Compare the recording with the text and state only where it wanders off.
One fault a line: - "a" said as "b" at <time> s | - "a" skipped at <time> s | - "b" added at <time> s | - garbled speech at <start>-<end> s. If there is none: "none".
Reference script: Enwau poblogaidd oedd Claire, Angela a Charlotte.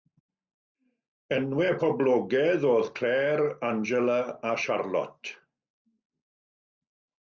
none